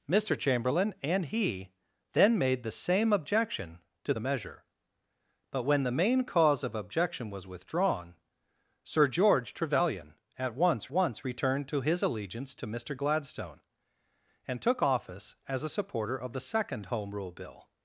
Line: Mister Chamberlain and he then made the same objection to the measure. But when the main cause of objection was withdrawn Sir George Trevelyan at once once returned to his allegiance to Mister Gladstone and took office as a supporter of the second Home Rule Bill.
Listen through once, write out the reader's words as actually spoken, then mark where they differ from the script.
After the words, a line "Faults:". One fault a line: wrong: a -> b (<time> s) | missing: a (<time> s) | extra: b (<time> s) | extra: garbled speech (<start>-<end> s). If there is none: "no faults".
Mister Chamberlain and he then made the same objection to the measure. But when the main cause of objection was withdrawn Sir George Trevelyan at once once returned to his allegiance to Mister Gladstone and took office as a supporter of the second Home Rule Bill.
Faults:
no faults